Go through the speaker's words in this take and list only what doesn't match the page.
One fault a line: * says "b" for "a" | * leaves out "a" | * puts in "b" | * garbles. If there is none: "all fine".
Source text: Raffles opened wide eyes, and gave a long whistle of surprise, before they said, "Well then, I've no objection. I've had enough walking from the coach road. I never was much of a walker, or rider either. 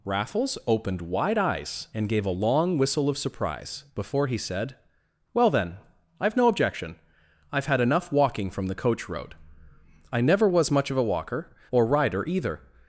* says "he" for "they"